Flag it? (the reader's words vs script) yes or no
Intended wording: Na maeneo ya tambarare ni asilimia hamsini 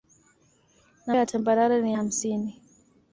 yes